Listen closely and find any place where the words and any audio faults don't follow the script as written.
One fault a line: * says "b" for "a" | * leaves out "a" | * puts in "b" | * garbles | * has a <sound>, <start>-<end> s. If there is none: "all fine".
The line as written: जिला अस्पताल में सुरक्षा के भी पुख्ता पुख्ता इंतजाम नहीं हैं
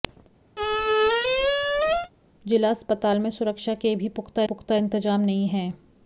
* has a squeak, 0.6-2.1 s